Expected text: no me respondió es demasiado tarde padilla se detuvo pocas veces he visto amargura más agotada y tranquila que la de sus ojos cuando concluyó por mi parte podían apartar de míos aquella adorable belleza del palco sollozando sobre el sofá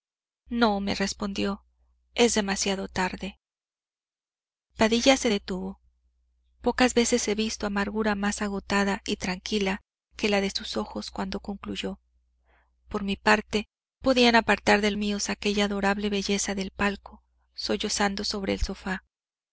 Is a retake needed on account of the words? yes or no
no